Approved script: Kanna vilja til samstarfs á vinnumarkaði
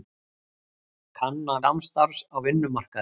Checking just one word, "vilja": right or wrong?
wrong